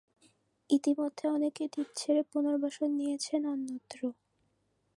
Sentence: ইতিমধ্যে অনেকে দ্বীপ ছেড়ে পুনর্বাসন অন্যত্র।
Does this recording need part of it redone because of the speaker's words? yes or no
yes